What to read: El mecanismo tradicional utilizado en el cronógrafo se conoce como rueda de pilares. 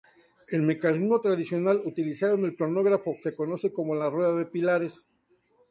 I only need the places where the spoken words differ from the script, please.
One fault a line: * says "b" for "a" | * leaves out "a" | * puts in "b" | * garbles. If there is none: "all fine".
* puts in "la"